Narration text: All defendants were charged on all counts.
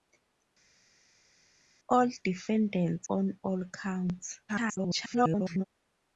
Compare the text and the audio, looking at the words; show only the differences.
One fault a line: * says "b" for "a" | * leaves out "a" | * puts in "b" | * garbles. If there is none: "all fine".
* leaves out "were charged"
* garbles